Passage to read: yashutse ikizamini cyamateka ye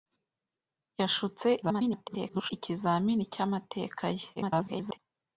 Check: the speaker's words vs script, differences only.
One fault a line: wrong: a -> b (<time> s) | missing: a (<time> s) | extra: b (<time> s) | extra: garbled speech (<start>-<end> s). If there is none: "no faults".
extra: garbled speech (1.6-2.5 s)
extra: garbled speech (4.4-5.0 s)